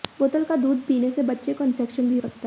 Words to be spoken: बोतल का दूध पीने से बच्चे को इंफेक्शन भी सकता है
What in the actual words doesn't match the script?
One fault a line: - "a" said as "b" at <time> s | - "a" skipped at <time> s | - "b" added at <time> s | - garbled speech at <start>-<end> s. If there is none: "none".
none